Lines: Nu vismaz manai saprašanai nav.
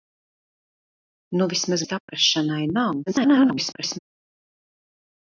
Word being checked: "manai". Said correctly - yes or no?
no